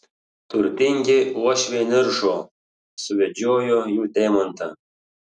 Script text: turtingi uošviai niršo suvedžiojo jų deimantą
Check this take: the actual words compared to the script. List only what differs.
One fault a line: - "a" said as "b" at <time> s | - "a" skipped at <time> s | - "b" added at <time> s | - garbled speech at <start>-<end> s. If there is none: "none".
none